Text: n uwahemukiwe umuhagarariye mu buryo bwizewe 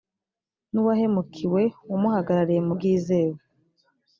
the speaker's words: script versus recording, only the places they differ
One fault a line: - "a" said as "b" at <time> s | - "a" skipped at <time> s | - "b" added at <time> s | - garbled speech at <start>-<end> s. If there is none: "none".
- "buryo" skipped at 2.7 s